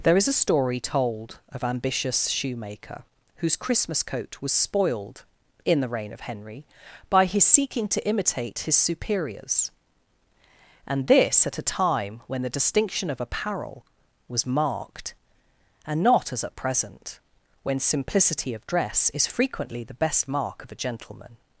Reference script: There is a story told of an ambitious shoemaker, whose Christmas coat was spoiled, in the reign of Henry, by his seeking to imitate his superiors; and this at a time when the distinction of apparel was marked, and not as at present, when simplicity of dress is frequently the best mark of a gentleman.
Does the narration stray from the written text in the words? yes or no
yes